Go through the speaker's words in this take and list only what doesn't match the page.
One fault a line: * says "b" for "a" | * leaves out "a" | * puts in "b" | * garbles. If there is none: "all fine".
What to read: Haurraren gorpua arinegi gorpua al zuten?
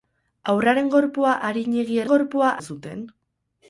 all fine